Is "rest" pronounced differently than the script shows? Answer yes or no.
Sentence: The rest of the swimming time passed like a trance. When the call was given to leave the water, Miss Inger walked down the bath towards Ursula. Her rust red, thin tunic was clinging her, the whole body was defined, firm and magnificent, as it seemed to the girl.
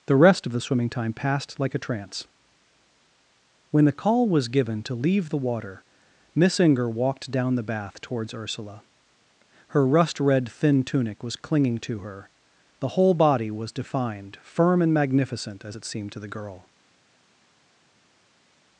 no